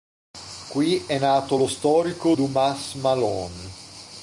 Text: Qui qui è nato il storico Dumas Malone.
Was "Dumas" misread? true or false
false